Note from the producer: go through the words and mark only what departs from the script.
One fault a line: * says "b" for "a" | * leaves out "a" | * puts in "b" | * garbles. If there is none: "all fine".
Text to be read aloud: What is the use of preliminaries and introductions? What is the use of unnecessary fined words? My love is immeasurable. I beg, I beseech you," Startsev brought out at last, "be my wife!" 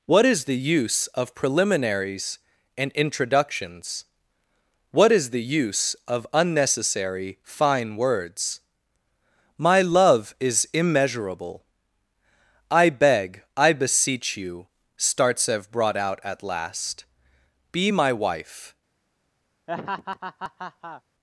* says "fine" for "fined"